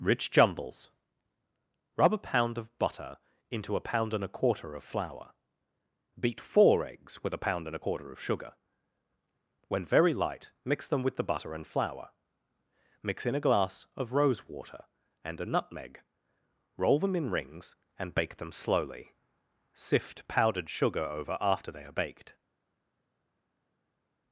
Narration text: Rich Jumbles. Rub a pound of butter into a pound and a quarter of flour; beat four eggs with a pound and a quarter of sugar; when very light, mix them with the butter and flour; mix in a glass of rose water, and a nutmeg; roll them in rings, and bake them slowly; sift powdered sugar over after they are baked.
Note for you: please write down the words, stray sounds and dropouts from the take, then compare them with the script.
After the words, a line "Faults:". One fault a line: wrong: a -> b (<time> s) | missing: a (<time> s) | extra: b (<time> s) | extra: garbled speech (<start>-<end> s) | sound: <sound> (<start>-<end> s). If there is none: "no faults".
Rich Jumbles. Rub a pound of butter into a pound and a quarter of flour; beat four eggs with a pound and a quarter of sugar; when very light, mix them with the butter and flour; mix in a glass of rose water, and a nutmeg; roll them in rings, and bake them slowly; sift powdered sugar over after they are baked.
Faults:
no faults